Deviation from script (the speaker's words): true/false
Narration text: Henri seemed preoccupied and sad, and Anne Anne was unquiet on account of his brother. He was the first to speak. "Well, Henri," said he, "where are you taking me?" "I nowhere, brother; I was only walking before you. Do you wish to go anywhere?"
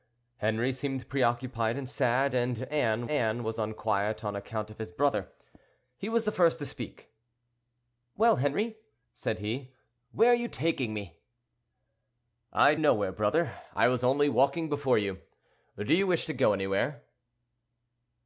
false